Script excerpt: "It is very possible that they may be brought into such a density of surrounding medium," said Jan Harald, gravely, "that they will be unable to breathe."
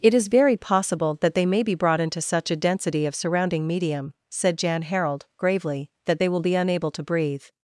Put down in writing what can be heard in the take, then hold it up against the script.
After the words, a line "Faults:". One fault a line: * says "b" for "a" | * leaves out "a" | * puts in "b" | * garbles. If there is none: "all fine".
"It is very possible that they may be brought into such a density of surrounding medium," said Jan Harald, gravely, "that they will be unable to breathe."
Faults:
all fine